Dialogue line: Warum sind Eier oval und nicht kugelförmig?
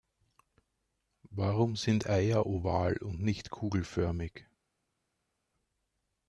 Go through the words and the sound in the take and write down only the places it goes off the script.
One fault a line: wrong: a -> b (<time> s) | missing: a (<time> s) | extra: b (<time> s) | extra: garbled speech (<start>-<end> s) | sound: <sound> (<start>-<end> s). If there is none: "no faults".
no faults